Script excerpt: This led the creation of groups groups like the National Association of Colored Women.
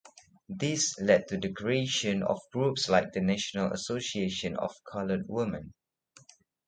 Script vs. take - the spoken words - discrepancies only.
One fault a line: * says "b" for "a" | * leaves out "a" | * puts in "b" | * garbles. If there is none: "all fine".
* puts in "to"
* leaves out "groups"